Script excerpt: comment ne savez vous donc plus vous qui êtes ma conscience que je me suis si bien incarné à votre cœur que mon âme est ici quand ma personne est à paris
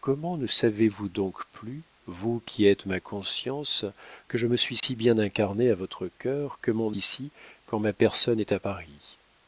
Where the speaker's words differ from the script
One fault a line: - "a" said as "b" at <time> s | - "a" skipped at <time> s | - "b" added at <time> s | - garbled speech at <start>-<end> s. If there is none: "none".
- "âme est" skipped at 7.0 s